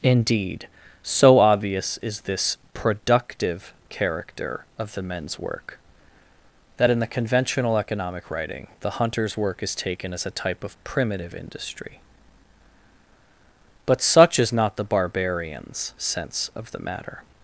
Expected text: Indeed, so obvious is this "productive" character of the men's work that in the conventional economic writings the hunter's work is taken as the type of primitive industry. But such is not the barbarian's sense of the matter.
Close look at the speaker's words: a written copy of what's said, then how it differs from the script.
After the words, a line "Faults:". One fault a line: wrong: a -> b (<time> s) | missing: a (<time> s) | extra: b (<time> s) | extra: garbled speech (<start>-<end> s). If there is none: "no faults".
Indeed, so obvious is this "productive" character of the men's work that in the conventional economic writing the hunter's work is taken as a type of primitive industry. But such is not the barbarian's sense of the matter.
Faults:
wrong: writings -> writing (8.3 s)
wrong: the -> a (10.3 s)